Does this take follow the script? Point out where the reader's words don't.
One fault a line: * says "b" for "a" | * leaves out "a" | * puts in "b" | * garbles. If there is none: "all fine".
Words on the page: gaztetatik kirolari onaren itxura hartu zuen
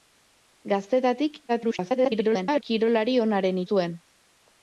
* garbles
* leaves out "itxura hartu"